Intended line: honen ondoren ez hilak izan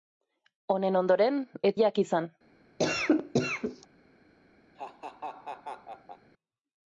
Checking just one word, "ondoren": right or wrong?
right